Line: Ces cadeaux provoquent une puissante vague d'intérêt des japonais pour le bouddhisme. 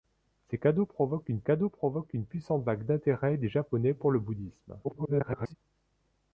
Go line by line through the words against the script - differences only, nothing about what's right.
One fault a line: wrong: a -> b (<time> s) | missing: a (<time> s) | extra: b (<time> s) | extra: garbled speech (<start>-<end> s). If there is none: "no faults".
extra: cadeaux provoquent une (1.4 s)
extra: garbled speech (4.8-5.6 s)